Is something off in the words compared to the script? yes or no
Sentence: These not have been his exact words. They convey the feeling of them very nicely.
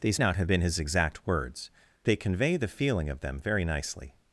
no